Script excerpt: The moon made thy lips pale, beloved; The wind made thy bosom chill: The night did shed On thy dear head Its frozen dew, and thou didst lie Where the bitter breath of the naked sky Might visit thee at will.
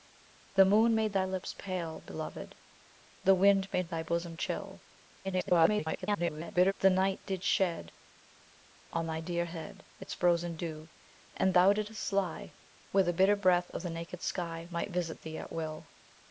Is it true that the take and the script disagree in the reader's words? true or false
true